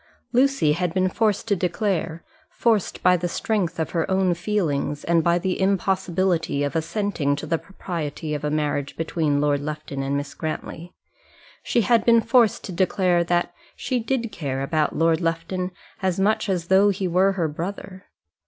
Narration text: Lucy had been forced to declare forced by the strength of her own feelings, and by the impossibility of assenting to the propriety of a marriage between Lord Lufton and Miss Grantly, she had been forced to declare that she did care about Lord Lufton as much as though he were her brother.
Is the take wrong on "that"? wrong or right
right